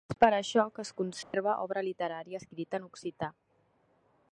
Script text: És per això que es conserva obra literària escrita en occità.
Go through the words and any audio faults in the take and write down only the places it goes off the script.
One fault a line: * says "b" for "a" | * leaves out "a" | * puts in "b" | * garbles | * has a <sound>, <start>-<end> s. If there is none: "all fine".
* has a dropout, 1.2-1.3 s